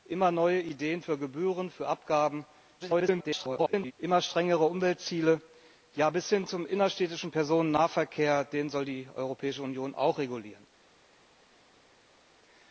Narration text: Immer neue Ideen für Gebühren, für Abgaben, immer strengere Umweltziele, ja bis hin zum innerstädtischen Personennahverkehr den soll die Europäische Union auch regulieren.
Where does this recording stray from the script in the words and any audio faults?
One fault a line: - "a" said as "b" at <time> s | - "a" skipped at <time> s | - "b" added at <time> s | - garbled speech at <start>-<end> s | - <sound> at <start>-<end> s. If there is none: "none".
- garbled speech at 2.8-3.9 s